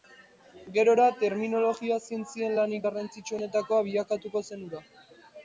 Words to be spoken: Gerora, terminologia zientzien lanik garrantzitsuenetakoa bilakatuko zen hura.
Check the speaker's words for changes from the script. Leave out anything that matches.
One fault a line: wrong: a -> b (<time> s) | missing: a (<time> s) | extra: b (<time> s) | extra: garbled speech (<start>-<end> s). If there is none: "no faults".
no faults